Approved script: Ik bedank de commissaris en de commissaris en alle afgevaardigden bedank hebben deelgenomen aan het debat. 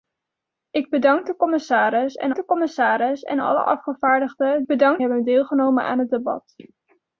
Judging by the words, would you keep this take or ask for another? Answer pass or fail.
pass